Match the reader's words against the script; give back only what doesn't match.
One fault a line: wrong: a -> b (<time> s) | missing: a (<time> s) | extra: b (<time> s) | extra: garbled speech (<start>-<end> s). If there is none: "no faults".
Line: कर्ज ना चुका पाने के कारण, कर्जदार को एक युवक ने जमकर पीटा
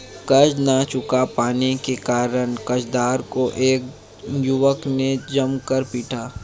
no faults